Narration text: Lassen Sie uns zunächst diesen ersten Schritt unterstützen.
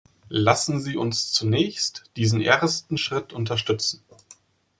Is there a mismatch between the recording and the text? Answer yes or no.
no